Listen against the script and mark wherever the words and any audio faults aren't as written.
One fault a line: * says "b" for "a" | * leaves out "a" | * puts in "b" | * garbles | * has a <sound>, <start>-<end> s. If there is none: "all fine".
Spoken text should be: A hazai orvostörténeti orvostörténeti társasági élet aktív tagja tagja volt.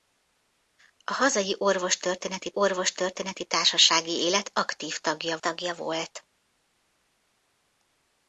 all fine